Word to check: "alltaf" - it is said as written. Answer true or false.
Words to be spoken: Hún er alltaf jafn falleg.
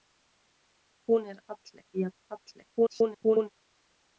false